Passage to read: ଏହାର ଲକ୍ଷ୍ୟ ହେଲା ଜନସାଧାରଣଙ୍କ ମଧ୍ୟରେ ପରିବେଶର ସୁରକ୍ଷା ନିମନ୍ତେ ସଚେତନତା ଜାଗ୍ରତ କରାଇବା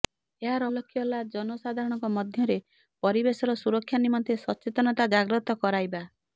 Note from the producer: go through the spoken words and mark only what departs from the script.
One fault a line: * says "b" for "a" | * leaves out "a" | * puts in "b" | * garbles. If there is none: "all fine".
all fine